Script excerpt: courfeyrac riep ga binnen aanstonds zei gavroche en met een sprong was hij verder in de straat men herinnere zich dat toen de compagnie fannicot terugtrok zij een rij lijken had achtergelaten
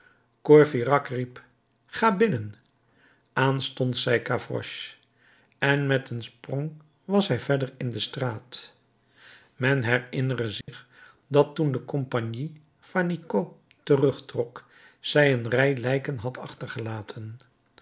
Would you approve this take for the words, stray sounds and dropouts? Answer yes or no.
no